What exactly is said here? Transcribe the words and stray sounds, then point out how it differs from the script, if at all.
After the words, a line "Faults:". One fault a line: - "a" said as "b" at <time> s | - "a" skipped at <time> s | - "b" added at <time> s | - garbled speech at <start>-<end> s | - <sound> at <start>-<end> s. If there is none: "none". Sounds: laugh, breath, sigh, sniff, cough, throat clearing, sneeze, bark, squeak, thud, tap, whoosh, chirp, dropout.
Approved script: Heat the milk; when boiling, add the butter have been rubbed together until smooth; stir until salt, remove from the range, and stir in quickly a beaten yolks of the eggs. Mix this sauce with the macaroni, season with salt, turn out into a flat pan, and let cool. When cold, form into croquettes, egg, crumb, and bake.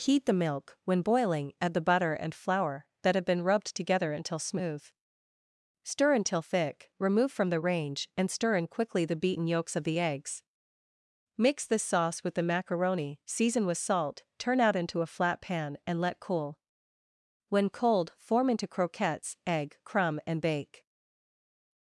Heat the milk; when boiling, add the butter and flour, that have been rubbed together until smooth; stir until thick, remove from the range, and stir in quickly the beaten yolks of the eggs. Mix this sauce with the macaroni, season with salt, turn out into a flat pan, and let cool. When cold, form into croquettes, egg, crumb, and bake.
Faults:
- "and flour that" added at 2.1 s
- "salt" said as "thick" at 6.4 s
- "a" said as "the" at 9.0 s